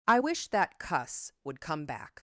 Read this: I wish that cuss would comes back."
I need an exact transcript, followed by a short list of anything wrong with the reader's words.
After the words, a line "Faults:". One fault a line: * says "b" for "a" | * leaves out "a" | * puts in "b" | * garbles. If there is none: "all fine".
I wish that cuss would come back."
Faults:
* says "come" for "comes"